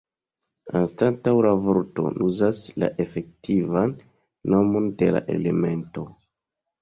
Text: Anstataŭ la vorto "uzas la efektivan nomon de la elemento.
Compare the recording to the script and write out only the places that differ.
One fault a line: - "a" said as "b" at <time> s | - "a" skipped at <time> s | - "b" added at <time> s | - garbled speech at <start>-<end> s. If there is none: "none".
none